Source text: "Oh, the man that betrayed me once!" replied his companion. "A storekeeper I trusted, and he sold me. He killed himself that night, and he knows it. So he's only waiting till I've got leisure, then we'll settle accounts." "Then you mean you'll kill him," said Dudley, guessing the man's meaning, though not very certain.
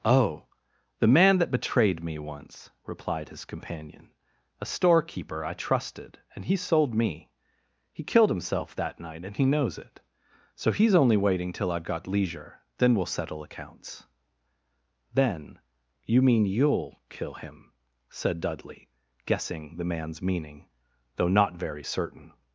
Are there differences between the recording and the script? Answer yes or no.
no